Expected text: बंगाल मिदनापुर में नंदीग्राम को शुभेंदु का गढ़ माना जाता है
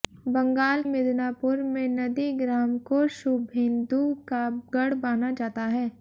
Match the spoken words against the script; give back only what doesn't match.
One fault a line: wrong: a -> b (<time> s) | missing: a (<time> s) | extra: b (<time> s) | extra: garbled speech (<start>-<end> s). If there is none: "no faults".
no faults